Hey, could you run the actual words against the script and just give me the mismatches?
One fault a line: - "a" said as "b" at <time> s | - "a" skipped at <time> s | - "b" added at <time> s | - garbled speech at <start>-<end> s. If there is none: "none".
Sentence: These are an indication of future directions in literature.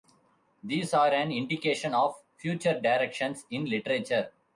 none